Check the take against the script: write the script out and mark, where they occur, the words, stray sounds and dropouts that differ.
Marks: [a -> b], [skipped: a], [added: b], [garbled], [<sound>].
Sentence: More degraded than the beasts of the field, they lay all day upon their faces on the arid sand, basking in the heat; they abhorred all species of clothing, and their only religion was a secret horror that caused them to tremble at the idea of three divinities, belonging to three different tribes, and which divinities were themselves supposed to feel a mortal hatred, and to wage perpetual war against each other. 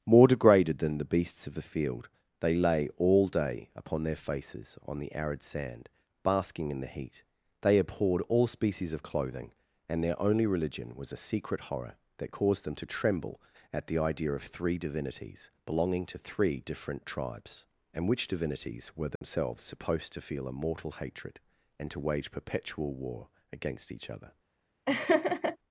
More degraded than the beasts of the field, they lay all day upon their faces on the arid sand, basking in the heat; they abhorred all species of clothing, and their only religion was a secret horror that caused them to tremble at the idea of three divinities, belonging to three different tribes, and which divinities were themselves [dropout] supposed to feel a mortal hatred, and to wage perpetual war against each other. [laugh]